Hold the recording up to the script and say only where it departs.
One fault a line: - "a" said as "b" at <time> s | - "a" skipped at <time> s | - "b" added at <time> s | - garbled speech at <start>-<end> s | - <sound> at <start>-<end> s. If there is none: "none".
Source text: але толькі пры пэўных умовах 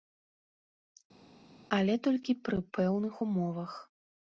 none